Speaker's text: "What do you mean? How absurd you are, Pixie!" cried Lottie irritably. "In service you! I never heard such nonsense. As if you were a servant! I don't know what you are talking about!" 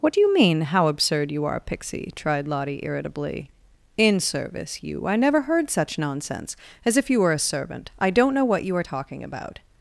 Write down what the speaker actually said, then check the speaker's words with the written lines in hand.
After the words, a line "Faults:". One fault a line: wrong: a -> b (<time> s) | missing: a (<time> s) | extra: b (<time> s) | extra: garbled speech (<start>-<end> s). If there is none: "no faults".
"What do you mean? How absurd you are, Pixie!" tried Lottie irritably. "In service you! I never heard such nonsense. As if you were a servant! I don't know what you are talking about!"
Faults:
wrong: cried -> tried (2.2 s)